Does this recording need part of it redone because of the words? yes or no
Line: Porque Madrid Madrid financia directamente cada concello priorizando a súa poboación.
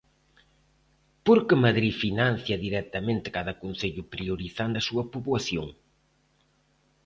yes